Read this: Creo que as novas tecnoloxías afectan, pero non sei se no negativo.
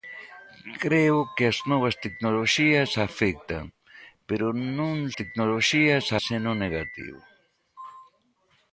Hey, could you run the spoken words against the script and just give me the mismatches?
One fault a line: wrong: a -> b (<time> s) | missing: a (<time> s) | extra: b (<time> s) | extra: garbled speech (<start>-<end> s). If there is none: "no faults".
wrong: sei -> tecnoloxías (5.2 s)